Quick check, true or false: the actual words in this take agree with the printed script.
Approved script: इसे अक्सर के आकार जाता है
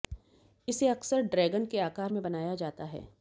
false